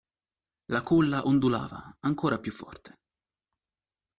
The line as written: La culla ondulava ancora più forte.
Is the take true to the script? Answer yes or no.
yes